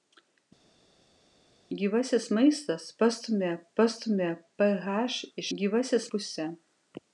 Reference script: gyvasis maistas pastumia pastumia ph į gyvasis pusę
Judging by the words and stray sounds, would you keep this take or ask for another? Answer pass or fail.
pass